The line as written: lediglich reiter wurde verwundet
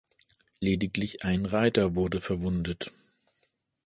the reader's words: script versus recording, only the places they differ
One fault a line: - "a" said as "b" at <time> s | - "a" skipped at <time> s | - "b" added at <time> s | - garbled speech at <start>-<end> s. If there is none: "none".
- "ein" added at 1.2 s